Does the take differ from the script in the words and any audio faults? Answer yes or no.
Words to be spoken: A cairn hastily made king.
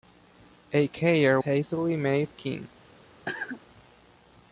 yes